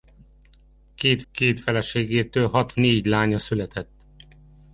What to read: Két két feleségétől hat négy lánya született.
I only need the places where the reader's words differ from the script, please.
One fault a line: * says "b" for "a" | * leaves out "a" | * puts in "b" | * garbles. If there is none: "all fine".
all fine